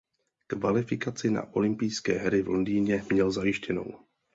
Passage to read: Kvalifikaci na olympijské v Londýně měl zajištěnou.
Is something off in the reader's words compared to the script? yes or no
yes